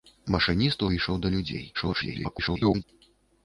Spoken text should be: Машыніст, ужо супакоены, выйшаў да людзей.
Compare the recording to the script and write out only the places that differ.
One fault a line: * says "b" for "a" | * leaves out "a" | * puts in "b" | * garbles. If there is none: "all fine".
* leaves out "ужо супакоены"
* garbles